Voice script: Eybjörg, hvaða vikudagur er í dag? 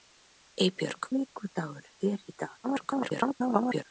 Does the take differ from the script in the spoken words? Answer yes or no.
yes